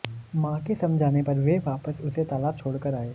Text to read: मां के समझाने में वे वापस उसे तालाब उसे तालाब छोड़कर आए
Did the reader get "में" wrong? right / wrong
wrong